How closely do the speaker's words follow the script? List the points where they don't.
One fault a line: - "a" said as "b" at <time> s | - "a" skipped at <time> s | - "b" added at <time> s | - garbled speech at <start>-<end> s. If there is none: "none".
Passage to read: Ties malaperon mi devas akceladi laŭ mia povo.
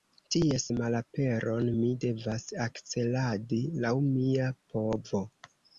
none